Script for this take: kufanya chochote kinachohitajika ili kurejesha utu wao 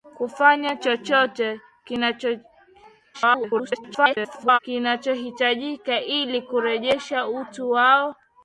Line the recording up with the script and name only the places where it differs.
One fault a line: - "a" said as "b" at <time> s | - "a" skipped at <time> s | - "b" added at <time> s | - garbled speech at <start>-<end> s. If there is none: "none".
- garbled speech at 3.1-4.6 s